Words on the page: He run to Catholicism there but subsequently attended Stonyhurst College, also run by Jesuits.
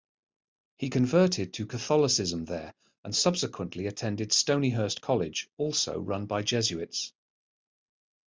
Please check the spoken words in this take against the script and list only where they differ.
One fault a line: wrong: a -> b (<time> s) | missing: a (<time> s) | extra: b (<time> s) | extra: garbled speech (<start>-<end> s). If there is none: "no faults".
wrong: run -> converted (0.9 s)
wrong: but -> and (3.0 s)